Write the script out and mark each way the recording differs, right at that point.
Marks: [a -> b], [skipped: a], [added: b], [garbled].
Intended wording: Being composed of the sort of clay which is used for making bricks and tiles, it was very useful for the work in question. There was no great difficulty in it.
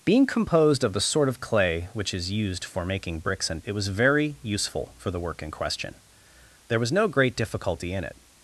Being composed of the sort of clay which is used for making bricks and [skipped: tiles,] it was very useful for the work in question. There was no great difficulty in it.